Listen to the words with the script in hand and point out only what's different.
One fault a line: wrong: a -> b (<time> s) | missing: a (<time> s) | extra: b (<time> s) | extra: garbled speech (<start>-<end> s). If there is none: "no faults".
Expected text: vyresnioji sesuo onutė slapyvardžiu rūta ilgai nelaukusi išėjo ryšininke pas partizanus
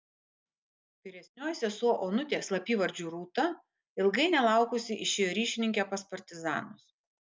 no faults